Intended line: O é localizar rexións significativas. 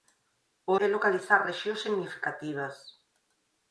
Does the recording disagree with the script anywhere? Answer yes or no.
no